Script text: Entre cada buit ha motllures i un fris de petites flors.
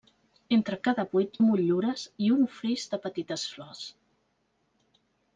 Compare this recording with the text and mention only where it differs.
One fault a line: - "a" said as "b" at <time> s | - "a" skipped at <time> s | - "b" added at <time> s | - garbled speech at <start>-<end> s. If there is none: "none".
none